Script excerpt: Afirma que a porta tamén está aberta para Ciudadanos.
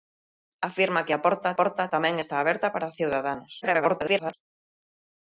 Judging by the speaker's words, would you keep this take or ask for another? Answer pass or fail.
fail